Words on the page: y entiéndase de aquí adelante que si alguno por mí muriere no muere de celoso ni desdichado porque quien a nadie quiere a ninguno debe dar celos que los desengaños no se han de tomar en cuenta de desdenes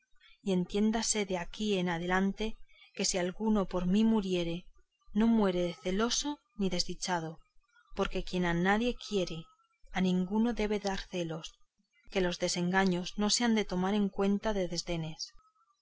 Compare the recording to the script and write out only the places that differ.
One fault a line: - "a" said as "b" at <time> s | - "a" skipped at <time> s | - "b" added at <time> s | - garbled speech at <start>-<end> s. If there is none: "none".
none